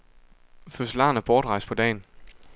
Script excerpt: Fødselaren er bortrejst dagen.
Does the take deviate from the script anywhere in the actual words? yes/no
yes